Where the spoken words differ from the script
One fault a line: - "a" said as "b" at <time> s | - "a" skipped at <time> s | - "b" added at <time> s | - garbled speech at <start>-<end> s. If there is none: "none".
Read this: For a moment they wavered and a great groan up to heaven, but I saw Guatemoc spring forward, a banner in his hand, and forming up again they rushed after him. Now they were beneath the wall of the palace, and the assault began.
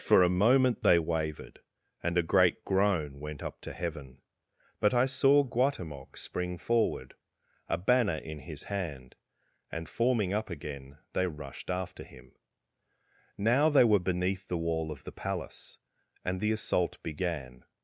- "went" added at 3.2 s